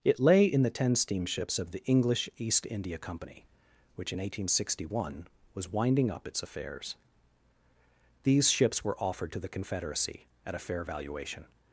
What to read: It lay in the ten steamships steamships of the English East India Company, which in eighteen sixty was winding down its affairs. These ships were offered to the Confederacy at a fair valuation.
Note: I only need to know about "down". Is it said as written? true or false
false